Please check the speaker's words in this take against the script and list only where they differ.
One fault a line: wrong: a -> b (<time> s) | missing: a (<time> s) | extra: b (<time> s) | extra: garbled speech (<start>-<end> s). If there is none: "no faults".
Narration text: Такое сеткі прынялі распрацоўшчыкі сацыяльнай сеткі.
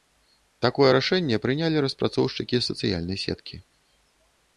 wrong: сеткі -> рашэнне (1.0 s)